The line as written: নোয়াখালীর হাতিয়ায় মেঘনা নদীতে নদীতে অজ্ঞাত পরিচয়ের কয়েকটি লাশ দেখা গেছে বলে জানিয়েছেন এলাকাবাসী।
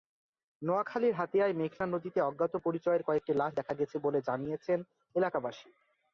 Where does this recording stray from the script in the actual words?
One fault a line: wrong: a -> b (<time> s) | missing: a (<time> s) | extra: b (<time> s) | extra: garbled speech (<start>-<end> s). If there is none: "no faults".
missing: নদীতে (2.2 s)